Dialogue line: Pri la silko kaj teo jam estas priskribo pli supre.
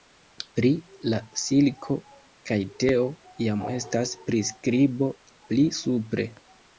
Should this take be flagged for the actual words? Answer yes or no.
no